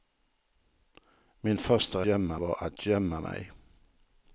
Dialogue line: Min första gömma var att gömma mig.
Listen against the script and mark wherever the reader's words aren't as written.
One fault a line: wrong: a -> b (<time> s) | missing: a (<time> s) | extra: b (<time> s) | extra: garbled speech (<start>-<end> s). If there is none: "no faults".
no faults